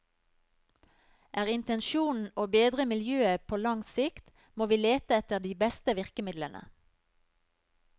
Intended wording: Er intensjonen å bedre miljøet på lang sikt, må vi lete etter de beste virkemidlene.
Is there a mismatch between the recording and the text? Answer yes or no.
no